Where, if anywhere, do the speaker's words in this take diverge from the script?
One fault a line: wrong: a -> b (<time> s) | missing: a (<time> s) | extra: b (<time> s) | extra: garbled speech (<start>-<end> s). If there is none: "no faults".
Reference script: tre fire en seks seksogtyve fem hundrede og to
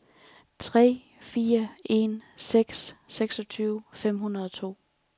no faults